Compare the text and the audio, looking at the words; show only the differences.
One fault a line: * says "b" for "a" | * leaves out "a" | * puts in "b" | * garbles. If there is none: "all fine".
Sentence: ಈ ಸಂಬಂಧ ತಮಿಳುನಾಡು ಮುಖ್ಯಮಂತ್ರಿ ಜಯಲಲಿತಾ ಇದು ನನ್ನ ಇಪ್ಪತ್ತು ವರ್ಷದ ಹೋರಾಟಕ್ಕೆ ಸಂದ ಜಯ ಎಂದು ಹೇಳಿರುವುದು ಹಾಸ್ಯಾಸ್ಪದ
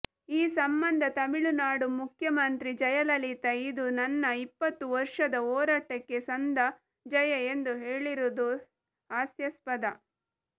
all fine